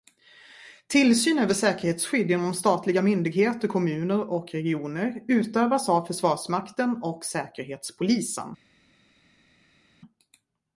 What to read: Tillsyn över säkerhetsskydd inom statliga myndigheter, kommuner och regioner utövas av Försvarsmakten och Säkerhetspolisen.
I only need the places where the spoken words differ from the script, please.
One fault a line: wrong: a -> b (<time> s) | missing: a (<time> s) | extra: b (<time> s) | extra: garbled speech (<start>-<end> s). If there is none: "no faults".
no faults